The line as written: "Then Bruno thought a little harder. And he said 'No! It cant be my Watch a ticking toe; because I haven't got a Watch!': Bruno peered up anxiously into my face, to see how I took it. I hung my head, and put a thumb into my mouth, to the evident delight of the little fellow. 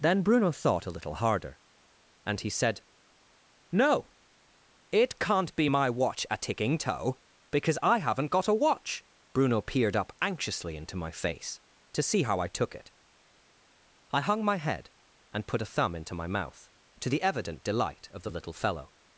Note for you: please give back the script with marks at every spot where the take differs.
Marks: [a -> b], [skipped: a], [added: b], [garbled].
"Then Bruno thought a little harder. And he said 'No! It cant be my Watch a ticking toe; because I haven't got a Watch!': Bruno peered up anxiously into my face, to see how I took it. I hung my head, and put a thumb into my mouth, to the evident delight of the little fellow.